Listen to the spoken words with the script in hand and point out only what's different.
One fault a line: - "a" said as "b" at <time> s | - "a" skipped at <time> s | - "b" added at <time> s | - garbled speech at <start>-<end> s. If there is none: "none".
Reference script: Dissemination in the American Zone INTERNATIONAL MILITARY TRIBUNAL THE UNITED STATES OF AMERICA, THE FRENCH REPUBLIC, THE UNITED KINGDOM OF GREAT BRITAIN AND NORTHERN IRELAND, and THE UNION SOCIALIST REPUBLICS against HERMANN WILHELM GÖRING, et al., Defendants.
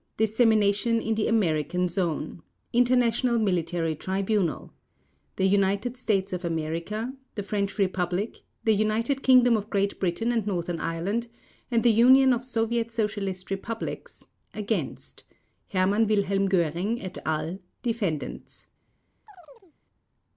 - "OF SOVIET" added at 12.3 s